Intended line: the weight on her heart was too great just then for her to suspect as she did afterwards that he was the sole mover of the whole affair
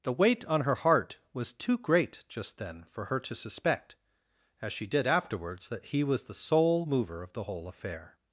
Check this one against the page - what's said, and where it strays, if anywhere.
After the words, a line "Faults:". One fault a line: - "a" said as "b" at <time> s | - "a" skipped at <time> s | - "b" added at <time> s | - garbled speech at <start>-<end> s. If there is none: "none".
the weight on her heart was too great just then for her to suspect as she did afterwards that he was the sole mover of the whole affair
Faults:
none